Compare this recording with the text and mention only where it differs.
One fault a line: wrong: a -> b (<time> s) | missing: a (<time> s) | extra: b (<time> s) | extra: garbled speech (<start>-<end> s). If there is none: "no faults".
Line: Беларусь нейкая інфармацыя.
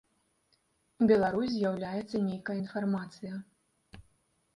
extra: з'яўляецца (1.5 s)